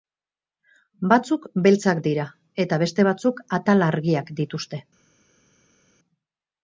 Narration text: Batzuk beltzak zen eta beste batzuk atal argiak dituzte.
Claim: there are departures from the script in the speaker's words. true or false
true